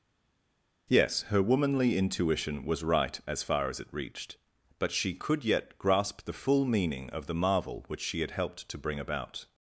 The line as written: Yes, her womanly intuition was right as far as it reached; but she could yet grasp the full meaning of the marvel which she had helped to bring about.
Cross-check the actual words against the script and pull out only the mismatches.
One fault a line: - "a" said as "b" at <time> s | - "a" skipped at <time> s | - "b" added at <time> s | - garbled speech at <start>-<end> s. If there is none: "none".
none